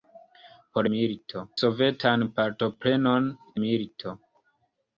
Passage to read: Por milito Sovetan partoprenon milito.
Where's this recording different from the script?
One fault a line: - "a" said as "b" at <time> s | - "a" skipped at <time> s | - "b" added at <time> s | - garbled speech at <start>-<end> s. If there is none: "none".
none